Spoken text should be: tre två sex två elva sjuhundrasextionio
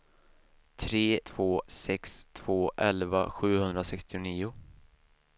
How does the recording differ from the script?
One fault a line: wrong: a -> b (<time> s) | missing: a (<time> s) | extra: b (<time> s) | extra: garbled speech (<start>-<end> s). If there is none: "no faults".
no faults